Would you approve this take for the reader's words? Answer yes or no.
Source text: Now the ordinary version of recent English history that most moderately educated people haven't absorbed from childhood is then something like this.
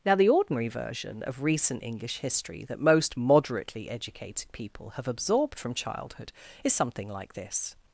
no